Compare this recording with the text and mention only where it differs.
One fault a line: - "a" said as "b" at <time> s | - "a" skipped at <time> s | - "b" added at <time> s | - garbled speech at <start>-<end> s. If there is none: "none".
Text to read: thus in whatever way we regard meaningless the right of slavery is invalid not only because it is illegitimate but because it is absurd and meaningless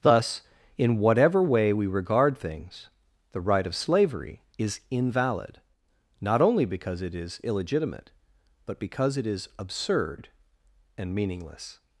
- "meaningless" said as "things" at 2.4 s